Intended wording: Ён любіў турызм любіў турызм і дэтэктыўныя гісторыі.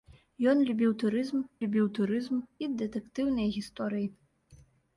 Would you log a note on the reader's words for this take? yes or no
no